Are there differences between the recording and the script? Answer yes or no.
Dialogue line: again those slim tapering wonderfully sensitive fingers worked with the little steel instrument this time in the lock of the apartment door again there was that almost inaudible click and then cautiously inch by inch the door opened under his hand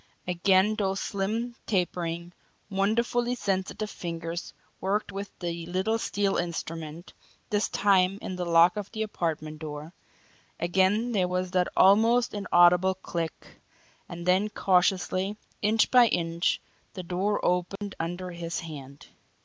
no